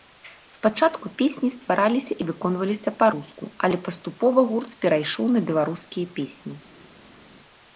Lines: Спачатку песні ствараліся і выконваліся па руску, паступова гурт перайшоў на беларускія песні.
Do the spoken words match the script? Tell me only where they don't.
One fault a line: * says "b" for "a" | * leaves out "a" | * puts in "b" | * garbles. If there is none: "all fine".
* puts in "але"